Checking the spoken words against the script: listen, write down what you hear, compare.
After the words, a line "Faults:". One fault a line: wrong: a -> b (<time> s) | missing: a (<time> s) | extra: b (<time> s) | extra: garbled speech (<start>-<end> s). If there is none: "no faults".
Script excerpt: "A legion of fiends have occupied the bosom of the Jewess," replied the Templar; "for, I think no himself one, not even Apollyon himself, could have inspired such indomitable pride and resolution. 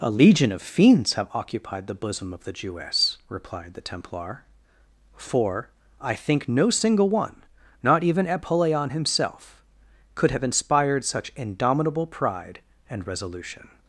"A legion of fiends have occupied the bosom of the Jewess," replied the Templar; "for, I think no single one, not even Apollyon himself, could have inspired such indomitable pride and resolution.
Faults:
wrong: himself -> single (6.7 s)